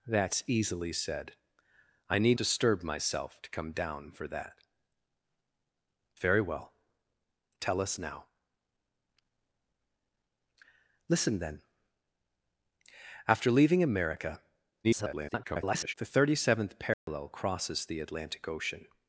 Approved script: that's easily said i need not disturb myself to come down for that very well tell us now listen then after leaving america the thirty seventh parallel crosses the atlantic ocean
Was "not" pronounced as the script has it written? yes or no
no